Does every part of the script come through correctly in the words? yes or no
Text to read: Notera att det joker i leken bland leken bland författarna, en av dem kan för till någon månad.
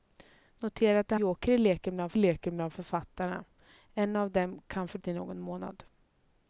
yes